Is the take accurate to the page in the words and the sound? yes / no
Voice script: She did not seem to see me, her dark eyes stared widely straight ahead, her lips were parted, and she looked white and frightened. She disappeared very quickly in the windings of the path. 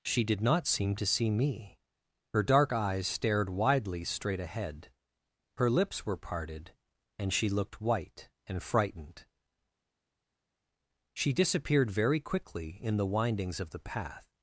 yes